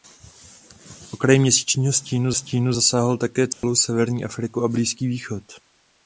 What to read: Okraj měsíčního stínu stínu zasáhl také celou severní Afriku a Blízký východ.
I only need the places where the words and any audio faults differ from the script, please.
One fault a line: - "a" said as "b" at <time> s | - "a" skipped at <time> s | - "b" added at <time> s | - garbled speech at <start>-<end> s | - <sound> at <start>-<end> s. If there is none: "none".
- dropout at 3.5-3.6 s